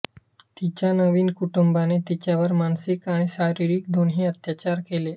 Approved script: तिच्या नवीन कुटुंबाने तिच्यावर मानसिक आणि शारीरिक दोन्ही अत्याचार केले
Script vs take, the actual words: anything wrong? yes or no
no